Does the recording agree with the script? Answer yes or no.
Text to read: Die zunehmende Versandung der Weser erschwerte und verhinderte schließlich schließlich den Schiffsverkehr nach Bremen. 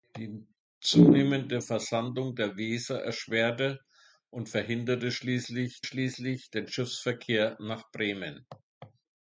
yes